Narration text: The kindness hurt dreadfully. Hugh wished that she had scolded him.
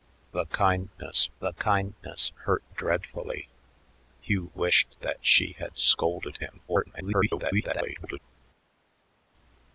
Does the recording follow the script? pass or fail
fail